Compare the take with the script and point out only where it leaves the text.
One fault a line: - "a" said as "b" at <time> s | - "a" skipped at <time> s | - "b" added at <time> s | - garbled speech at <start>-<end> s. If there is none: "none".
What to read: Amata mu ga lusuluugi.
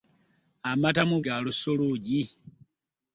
none